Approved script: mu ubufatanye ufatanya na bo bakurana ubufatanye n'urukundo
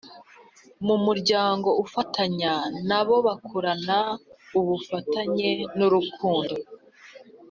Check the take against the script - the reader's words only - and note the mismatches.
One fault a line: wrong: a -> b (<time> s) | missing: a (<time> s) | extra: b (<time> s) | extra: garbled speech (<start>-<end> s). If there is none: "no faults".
wrong: ubufatanye -> muryango (1.1 s)